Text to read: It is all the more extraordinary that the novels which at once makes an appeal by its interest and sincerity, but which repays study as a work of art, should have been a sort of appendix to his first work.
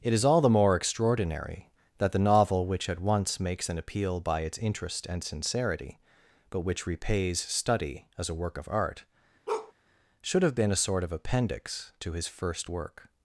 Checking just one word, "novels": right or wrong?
wrong